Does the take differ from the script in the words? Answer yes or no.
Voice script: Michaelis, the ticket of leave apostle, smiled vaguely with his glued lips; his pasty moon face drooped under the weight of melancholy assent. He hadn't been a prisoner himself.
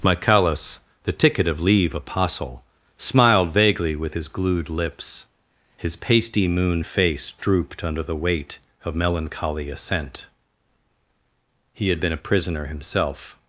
yes